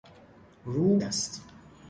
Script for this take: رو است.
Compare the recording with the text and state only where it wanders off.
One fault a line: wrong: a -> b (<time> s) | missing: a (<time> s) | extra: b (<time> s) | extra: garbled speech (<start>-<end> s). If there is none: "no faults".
no faults